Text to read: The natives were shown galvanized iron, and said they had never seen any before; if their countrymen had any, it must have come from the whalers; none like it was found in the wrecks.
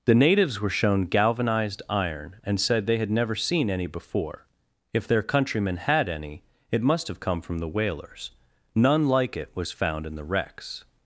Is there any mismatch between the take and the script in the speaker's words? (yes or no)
no